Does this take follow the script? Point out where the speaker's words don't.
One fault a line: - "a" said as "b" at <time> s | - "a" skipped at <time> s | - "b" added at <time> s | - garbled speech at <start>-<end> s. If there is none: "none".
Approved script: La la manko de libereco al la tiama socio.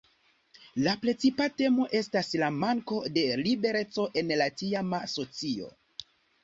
- "precipa temo estas" added at 1.0 s
- "al" said as "en" at 4.2 s